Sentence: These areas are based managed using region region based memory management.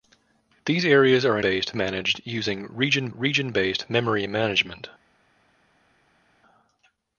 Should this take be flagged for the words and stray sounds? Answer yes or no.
no